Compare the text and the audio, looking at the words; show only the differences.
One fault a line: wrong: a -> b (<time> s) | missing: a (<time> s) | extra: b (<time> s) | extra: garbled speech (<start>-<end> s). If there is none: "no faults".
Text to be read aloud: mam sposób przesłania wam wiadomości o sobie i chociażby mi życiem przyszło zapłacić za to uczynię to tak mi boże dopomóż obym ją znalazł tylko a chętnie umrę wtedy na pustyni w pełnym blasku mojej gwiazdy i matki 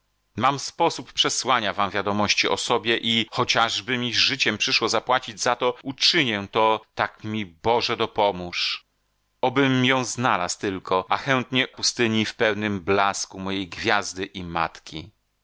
missing: umrę wtedy na (11.7 s)